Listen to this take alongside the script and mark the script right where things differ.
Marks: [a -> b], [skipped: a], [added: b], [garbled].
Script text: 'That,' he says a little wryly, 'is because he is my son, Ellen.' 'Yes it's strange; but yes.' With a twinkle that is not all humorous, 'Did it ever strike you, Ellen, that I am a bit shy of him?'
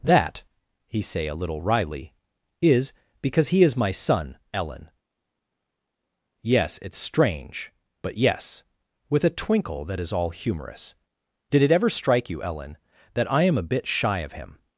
'That,' he [says -> say] a little wryly, 'is because he is my son, Ellen.' 'Yes it's strange; but yes.' With a twinkle that is [skipped: not] all humorous, 'Did it ever strike you, Ellen, that I am a bit shy of him?'